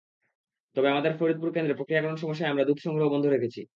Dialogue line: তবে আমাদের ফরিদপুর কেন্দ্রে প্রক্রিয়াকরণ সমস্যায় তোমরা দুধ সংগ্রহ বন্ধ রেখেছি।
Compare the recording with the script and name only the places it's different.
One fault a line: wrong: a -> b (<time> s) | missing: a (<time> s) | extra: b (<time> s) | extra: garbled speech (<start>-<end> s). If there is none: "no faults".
wrong: তোমরা -> আমরা (2.5 s)